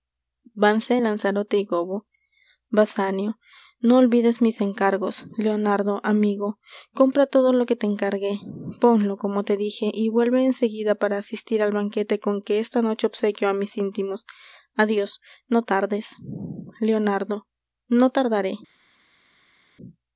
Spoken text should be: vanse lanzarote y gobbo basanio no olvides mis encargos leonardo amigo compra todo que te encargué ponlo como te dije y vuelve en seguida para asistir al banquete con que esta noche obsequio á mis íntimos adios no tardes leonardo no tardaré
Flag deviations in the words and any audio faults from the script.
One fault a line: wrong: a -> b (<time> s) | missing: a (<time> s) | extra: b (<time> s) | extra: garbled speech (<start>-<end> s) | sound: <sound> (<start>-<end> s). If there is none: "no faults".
extra: lo (7.5 s)